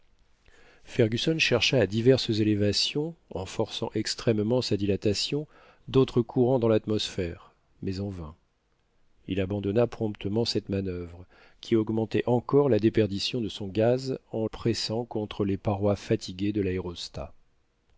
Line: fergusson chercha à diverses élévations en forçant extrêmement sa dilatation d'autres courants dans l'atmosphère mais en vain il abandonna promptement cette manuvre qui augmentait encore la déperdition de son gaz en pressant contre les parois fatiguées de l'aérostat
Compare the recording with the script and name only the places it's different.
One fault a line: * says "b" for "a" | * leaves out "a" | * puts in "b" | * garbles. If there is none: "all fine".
all fine